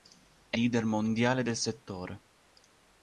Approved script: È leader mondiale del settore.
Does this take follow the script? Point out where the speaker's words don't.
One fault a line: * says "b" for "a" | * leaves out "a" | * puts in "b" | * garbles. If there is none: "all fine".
all fine